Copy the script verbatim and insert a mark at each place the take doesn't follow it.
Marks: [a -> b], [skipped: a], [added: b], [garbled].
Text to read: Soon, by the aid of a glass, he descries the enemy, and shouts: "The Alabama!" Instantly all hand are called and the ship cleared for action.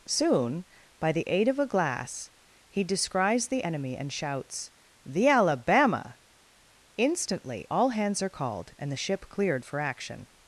Soon, by the aid of a glass, he descries the enemy, and shouts: "The Alabama!" Instantly all [hand -> hands] are called and the ship cleared for action.